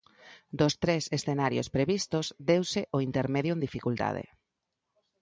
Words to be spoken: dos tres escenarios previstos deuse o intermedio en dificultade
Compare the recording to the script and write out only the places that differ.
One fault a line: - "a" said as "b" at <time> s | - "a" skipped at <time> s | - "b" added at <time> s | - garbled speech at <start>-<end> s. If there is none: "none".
none